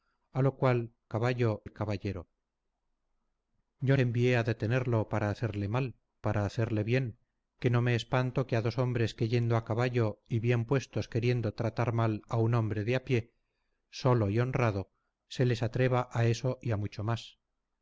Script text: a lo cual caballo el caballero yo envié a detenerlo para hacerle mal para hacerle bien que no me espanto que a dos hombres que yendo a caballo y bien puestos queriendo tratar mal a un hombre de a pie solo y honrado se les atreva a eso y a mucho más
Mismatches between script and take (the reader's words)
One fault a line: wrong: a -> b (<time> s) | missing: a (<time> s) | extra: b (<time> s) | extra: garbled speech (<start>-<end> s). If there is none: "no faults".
no faults